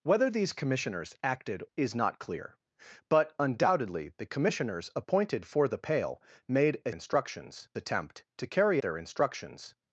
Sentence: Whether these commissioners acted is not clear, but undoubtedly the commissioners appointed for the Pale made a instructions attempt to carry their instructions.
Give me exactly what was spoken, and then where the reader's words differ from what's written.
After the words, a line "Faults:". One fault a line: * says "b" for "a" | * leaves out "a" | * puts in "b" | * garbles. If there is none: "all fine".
Whether these commissioners acted is not clear, but undoubtedly the commissioners appointed for the Pale made a instructions attempt to carry their instructions.
Faults:
all fine